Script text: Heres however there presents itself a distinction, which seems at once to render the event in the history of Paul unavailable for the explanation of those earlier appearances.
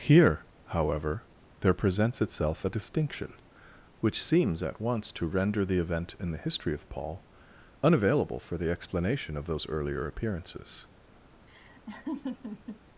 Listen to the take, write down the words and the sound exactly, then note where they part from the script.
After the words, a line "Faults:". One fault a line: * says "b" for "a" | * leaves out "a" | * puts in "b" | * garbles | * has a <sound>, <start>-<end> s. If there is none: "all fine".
Here however there presents itself a distinction, which seems at once to render the event in the history of Paul unavailable for the explanation of those earlier appearances.
Faults:
* says "Here" for "Heres"
* has a laugh, 11.5-12.8 s